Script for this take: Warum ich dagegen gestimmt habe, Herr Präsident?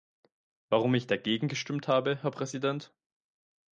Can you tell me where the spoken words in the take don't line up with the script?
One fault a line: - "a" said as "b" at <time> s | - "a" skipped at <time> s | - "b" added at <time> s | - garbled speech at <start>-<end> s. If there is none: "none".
none